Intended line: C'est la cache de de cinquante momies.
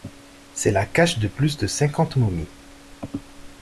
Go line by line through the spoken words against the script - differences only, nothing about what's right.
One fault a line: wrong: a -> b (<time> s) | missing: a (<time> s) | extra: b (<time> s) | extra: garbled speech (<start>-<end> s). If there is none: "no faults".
extra: plus (1.3 s)